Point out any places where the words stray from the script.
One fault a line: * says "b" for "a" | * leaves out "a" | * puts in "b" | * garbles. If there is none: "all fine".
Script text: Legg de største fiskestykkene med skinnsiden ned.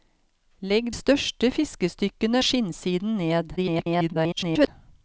* leaves out "de"
* leaves out "med"
* garbles